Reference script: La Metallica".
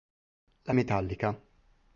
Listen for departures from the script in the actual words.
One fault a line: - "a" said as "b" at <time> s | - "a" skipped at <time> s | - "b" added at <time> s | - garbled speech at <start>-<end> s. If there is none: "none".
none